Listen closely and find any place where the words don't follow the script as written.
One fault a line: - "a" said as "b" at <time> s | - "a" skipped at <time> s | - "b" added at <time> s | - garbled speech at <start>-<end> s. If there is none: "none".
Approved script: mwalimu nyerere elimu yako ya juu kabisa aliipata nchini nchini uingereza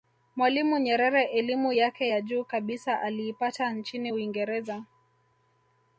- "yako" said as "yake" at 1.7 s
- "nchini" skipped at 4.1 s